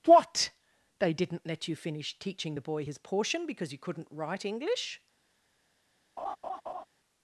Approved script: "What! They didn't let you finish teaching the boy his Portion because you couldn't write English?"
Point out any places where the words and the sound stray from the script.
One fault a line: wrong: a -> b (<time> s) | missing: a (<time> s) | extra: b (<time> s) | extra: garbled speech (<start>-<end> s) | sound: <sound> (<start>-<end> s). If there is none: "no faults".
sound: laugh (6.2-6.9 s)